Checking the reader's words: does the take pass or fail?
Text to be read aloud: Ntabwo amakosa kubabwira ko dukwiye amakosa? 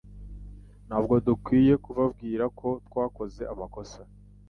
fail